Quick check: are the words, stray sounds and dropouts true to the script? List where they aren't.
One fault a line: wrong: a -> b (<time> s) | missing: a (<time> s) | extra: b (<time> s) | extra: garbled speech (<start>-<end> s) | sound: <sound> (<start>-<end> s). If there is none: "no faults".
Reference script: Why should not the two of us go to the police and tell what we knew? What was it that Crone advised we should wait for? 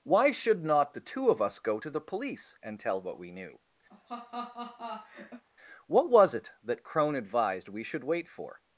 sound: laugh (3.9-5.4 s)